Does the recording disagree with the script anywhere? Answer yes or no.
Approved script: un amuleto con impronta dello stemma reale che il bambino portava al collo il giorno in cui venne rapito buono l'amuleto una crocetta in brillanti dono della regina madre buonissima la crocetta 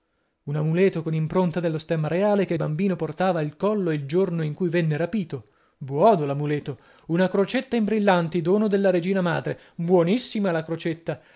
no